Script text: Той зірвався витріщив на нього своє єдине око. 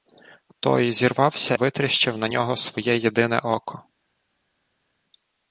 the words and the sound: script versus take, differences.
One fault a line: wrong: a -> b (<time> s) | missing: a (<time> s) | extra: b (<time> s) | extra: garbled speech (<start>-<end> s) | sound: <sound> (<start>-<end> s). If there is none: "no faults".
no faults